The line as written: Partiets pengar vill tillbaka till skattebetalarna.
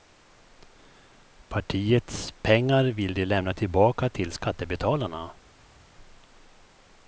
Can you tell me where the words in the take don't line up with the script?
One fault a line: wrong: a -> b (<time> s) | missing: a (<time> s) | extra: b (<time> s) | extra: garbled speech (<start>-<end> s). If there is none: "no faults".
extra: de lämna (3.1 s)